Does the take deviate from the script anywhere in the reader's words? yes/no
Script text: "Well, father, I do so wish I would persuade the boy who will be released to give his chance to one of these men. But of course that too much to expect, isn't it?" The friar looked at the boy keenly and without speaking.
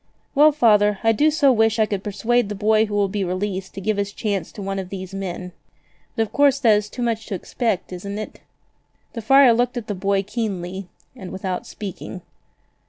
yes